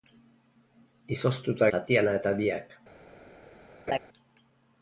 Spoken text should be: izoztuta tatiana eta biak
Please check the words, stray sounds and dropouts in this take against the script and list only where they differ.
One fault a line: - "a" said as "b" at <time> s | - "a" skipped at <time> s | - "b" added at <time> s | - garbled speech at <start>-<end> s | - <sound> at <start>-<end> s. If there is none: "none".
- laugh at 3.9-4.0 s